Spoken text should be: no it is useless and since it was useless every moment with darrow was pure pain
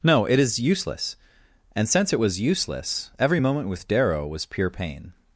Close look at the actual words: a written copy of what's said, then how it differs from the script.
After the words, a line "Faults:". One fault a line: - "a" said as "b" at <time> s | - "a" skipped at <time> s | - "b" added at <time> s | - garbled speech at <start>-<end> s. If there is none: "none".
no it is useless and since it was useless every moment with darrow was pure pain
Faults:
none